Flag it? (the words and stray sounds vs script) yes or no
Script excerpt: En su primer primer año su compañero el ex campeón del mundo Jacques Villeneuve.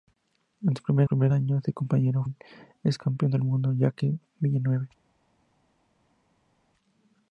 no